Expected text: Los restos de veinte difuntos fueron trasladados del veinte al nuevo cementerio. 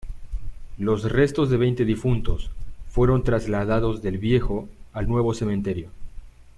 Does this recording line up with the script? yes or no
no